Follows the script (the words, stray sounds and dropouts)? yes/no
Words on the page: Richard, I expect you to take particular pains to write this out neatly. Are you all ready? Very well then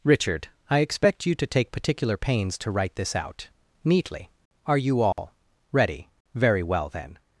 no